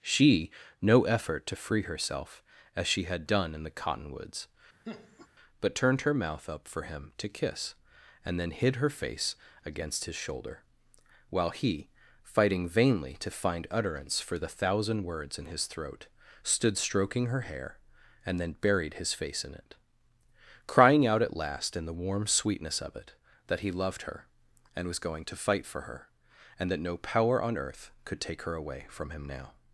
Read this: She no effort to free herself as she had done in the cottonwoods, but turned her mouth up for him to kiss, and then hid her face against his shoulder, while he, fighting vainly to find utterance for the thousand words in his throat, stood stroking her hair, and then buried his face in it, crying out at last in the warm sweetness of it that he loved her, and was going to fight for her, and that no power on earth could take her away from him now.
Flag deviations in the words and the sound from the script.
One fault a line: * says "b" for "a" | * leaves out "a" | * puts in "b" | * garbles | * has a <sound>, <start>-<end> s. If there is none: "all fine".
* has a laugh, 4.9-5.3 s